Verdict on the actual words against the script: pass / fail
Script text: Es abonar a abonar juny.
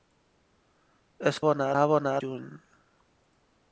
pass